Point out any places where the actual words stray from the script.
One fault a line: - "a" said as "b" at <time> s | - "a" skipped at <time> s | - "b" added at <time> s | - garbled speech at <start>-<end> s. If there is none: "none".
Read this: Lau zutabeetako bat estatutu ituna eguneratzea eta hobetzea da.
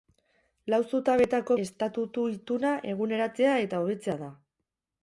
- "bat" skipped at 1.6 s